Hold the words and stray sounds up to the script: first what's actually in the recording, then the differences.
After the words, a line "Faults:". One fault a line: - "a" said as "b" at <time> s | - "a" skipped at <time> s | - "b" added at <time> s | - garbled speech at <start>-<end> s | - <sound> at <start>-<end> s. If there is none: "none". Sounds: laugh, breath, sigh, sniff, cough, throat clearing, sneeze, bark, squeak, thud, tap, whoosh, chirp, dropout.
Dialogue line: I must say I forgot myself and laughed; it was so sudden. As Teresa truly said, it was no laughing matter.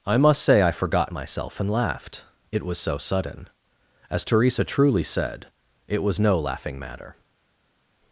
I must say I forgot myself and laughed; it was so sudden. As Teresa truly said, it was no laughing matter.
Faults:
none